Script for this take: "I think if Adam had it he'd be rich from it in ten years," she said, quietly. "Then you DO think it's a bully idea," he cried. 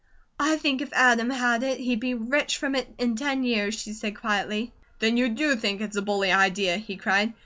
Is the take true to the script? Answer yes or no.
yes